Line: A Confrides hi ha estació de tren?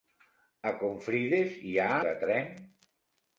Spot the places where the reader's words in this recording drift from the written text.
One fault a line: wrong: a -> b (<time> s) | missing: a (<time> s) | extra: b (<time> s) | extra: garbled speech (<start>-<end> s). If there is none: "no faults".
missing: estació (1.9 s)